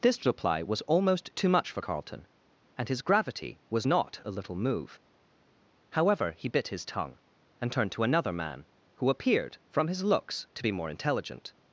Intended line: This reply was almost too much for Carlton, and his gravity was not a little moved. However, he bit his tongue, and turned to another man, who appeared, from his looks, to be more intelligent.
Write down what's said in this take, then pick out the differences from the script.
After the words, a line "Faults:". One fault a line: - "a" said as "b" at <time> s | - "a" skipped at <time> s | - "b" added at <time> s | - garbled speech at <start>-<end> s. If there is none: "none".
This reply was almost too much for Carlton, and his gravity was not a little move. However, he bit his tongue, and turned to another man, who appeared, from his looks, to be more intelligent.
Faults:
- "moved" said as "move" at 4.6 s